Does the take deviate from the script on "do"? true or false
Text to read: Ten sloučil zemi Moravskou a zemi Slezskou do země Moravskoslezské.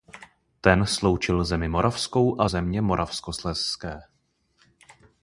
true